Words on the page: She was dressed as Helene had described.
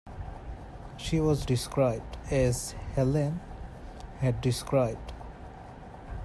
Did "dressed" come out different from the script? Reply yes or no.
yes